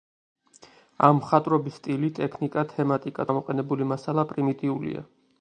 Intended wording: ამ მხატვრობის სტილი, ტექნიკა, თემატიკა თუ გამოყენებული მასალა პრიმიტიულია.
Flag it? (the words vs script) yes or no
yes